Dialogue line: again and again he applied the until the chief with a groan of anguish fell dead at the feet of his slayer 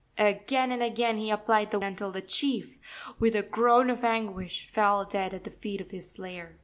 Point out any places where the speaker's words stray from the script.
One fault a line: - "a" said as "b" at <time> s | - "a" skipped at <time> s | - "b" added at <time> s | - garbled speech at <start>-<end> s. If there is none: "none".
none